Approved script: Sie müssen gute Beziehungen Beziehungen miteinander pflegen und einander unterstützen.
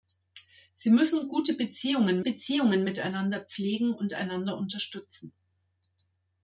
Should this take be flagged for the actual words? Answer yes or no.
no